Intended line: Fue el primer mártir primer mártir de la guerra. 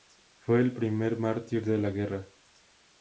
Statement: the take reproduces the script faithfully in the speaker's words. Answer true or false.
false